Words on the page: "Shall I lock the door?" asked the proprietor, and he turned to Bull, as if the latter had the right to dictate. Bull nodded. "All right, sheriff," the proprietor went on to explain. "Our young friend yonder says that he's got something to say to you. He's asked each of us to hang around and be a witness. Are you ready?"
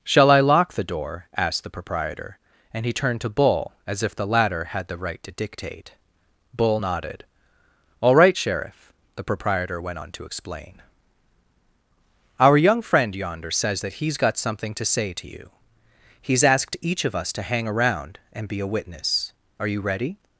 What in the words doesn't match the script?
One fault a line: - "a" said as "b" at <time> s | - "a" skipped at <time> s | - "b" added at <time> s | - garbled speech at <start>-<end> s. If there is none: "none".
none